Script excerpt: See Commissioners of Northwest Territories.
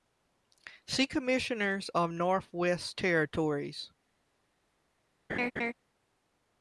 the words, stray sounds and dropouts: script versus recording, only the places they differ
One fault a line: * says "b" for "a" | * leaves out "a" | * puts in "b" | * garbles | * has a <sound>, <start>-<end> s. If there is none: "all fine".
* has a laugh, 5.3-5.7 s